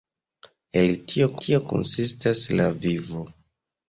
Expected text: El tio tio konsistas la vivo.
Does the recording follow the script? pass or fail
pass